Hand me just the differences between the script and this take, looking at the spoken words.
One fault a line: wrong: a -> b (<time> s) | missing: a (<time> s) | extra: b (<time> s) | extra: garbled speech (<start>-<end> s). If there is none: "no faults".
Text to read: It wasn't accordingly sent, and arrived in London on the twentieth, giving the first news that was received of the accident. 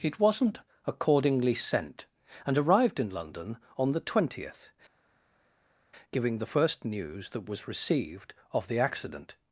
no faults